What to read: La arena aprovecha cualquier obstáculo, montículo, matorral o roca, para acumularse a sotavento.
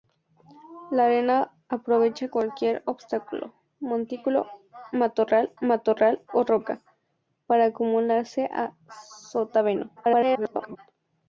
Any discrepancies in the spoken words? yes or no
yes